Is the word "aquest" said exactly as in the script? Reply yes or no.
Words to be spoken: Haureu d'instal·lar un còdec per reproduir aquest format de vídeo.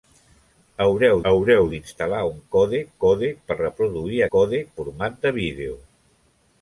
no